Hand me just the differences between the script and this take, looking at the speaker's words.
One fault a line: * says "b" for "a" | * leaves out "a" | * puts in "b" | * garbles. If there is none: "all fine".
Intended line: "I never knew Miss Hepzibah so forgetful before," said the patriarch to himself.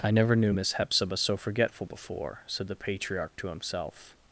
all fine